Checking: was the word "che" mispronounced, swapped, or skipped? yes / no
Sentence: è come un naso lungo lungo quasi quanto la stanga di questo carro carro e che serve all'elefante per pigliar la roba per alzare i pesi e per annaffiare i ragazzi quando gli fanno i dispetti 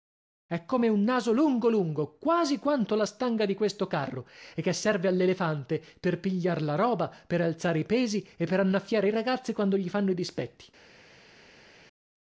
no